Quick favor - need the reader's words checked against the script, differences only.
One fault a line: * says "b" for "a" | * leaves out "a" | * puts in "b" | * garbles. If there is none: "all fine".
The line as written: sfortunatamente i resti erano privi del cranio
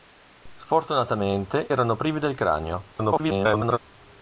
* leaves out "i resti"
* garbles